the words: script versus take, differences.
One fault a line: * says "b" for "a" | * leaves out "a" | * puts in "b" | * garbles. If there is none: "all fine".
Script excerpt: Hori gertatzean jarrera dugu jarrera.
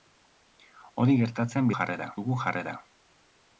all fine